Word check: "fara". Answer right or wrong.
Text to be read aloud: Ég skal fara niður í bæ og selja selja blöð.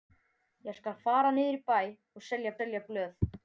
right